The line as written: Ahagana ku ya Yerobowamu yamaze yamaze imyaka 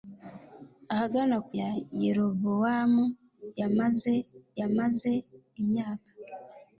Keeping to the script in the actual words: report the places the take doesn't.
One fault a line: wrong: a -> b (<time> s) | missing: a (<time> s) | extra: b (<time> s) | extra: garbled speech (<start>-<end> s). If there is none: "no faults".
no faults